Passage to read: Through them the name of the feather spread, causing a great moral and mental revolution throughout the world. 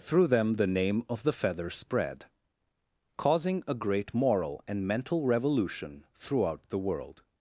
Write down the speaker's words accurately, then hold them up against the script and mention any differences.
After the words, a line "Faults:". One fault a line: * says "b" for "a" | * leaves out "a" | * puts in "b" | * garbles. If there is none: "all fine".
Through them the name of the feather spread, causing a great moral and mental revolution throughout the world.
Faults:
all fine